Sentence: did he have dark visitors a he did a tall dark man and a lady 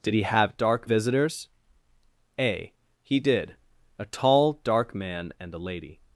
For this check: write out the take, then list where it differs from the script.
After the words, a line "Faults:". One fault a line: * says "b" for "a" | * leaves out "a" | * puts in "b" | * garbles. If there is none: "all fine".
did he have dark visitors a he did a tall dark man and a lady
Faults:
all fine